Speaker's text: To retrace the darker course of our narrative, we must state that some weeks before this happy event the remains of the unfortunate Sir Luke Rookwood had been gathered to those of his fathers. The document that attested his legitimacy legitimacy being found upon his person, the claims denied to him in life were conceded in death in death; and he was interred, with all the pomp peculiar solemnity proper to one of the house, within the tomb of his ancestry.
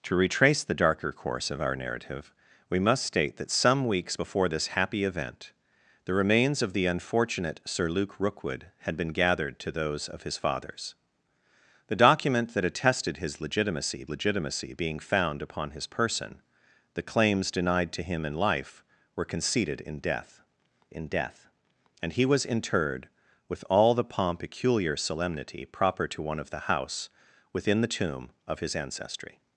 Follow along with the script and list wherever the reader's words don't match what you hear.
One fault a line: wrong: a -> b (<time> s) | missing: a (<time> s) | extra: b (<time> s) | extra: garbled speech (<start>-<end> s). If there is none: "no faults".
no faults